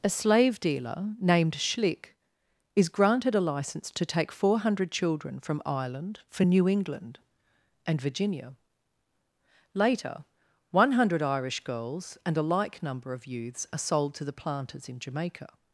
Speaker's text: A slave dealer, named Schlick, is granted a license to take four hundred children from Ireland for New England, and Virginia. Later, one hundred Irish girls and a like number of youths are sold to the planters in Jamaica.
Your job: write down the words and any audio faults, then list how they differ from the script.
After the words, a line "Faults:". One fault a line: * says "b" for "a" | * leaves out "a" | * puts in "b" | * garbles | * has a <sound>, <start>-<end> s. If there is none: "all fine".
A slave dealer, named Schlick, is granted a license to take four hundred children from Ireland for New England, and Virginia. Later, one hundred Irish girls and a like number of youths are sold to the planters in Jamaica.
Faults:
all fine